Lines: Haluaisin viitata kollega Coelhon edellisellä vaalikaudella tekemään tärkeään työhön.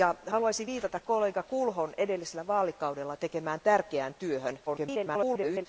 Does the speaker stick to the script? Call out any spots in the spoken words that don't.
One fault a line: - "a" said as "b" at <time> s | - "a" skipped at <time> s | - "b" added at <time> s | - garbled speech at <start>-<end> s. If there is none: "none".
- garbled speech at 4.7-5.7 s